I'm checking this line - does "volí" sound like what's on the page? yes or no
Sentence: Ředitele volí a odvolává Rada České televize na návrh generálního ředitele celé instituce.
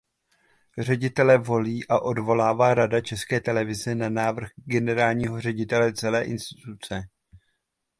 yes